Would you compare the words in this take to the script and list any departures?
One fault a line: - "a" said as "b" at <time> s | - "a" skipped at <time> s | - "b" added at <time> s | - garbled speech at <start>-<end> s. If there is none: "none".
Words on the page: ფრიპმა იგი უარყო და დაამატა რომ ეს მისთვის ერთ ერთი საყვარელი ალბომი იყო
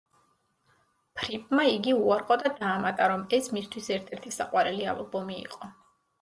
none